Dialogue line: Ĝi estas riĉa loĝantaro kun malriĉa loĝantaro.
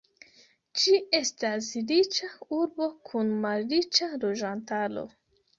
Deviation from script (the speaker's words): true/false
true